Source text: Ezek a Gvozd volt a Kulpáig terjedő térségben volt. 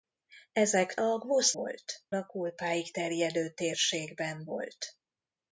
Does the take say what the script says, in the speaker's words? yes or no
yes